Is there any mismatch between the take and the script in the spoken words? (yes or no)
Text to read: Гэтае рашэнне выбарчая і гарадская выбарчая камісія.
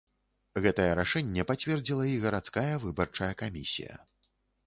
yes